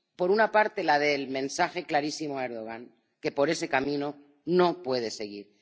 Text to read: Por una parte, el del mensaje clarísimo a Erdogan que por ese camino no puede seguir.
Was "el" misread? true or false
true